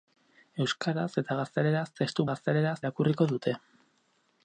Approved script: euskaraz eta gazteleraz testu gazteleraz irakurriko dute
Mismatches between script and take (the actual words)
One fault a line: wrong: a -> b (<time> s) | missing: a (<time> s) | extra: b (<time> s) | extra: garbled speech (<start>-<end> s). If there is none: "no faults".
no faults